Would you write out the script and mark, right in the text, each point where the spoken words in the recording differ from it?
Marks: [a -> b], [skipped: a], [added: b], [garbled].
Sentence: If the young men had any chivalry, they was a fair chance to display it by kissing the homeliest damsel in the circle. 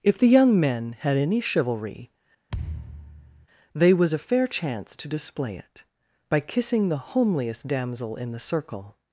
If the young men had any chivalry, they was a fair chance to display it by kissing the homeliest damsel in the circle.